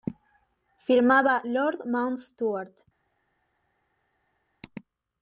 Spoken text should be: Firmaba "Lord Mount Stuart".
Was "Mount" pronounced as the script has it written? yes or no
yes